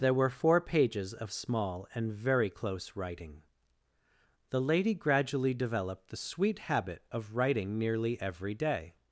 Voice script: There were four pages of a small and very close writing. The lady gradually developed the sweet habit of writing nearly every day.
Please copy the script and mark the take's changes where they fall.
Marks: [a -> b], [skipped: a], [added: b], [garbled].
There were four pages of [skipped: a] small and very close writing. The lady gradually developed the sweet habit of writing nearly every day.